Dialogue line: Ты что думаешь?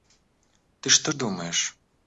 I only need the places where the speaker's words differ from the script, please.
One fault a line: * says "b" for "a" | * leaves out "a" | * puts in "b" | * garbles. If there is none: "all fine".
all fine